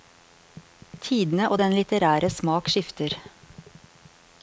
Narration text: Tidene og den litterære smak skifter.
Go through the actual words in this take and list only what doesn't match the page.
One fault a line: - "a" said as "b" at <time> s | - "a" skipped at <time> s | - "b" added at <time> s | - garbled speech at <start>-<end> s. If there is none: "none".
none